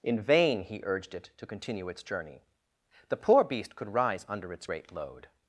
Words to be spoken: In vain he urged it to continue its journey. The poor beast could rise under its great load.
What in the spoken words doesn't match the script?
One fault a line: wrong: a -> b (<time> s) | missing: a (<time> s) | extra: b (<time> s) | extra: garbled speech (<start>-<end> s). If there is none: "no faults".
no faults